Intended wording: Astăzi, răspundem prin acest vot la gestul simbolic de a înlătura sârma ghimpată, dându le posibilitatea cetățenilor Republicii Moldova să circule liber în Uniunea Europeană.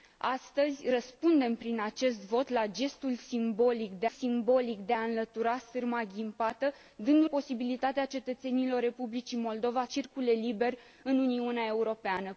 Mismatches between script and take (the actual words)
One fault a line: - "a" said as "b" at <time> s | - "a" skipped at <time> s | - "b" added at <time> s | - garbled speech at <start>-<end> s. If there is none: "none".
- "simbolic de" added at 4.0 s
- "le" skipped at 7.3 s
- "să" skipped at 9.8 s